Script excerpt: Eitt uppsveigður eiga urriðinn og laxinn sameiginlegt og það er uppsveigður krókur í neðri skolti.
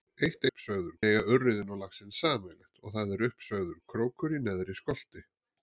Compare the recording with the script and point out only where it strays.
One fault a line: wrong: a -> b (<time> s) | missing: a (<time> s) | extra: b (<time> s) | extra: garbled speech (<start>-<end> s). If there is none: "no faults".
no faults